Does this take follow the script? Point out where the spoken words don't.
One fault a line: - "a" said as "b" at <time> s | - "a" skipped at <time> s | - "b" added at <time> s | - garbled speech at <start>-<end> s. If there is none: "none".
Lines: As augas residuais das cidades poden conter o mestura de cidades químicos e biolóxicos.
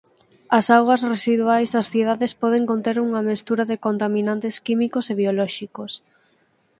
- "o" said as "unha" at 3.1 s
- "cidades" said as "contaminantes" at 3.9 s